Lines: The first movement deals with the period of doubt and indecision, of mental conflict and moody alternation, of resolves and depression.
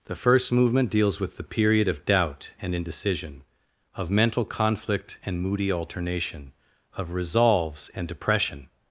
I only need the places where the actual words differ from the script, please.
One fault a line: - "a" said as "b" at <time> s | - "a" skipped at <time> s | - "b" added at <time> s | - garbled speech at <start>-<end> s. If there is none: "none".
none